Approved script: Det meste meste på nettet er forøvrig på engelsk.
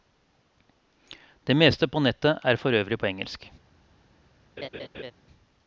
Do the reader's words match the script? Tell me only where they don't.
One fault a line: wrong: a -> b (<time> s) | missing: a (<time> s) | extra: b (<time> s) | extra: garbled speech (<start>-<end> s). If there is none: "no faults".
missing: meste (1.9 s)